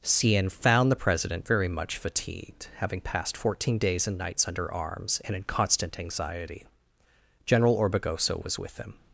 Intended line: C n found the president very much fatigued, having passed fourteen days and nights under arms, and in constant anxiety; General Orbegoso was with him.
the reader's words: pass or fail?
pass